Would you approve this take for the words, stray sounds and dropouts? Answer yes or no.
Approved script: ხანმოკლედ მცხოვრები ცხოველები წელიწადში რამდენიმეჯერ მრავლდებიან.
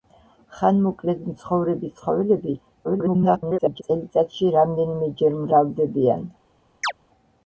no